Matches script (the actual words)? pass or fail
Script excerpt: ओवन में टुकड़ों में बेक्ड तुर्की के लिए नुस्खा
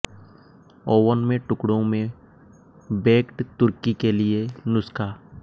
pass